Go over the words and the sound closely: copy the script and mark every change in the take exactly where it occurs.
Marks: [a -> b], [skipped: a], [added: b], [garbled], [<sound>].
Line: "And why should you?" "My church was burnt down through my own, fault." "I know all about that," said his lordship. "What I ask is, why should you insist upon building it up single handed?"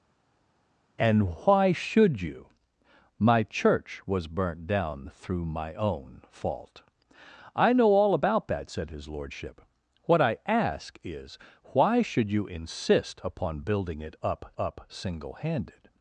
"And why should you?" "My church was burnt down through my own, fault." "I know all about that," said his lordship. "What I ask is, why should you insist upon building it up [added: up] single handed?"